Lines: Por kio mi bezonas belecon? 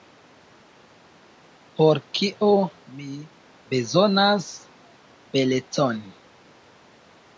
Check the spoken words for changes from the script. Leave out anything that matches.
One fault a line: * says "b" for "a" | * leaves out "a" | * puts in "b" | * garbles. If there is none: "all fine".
all fine